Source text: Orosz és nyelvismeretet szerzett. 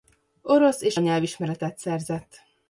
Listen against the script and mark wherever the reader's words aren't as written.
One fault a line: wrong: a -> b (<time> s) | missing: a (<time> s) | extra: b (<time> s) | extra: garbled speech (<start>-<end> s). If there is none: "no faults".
no faults